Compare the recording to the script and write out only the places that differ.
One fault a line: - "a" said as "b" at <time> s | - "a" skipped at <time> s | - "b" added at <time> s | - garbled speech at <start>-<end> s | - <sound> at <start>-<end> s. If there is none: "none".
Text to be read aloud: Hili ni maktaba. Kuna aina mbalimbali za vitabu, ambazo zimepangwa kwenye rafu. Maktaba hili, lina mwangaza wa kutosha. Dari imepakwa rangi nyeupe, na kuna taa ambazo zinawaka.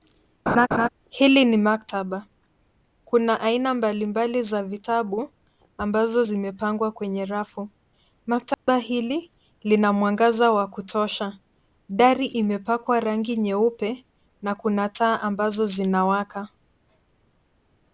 - laugh at 0.5-0.9 s
- dropout at 8.5-8.7 s